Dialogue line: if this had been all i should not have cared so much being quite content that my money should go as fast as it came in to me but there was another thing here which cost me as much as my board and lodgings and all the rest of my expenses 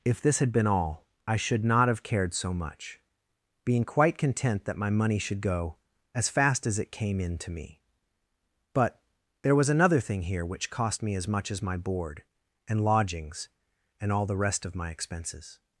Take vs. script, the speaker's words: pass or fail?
pass